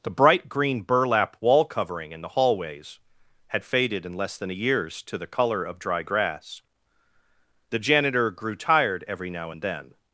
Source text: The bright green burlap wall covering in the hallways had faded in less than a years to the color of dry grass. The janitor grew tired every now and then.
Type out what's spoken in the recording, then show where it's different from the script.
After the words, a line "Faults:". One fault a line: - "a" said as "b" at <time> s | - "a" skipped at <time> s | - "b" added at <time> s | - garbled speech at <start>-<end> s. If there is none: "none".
The bright green burlap wall covering in the hallways had faded in less than a years to the color of dry grass. The janitor grew tired every now and then.
Faults:
none